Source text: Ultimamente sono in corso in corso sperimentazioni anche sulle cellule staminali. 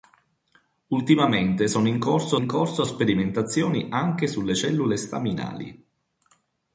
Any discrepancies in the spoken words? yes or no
no